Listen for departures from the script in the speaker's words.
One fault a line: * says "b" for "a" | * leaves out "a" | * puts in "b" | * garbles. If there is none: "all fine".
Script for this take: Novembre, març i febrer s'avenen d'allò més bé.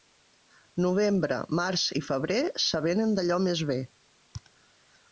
all fine